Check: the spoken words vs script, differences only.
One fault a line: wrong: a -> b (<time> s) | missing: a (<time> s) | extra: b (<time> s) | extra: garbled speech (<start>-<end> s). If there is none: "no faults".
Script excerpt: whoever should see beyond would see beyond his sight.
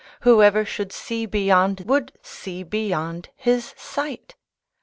no faults